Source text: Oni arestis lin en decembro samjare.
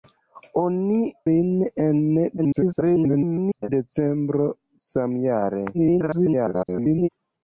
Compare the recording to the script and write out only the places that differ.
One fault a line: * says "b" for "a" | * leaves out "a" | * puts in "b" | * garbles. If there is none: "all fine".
* leaves out "arestis"
* garbles
* garbles